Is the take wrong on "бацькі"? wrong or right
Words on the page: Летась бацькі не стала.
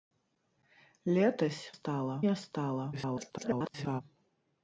wrong